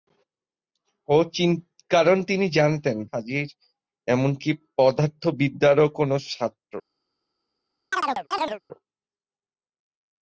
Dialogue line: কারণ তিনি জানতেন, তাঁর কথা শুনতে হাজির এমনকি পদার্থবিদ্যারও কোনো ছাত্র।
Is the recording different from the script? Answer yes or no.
yes